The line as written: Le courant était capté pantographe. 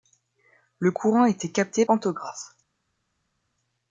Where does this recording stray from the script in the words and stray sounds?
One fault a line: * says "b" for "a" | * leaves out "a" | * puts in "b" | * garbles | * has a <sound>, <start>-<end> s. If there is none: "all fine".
all fine